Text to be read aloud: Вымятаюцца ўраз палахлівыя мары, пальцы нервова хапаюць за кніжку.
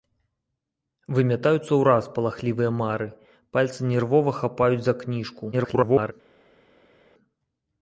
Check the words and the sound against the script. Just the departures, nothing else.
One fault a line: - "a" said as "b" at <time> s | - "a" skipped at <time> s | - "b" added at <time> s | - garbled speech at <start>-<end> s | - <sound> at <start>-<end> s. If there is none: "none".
- garbled speech at 5.5-6.1 s